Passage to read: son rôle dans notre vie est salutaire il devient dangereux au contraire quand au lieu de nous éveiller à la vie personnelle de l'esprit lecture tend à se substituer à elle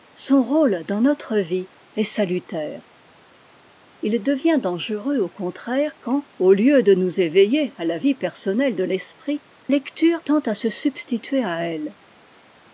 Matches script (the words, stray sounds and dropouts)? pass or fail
pass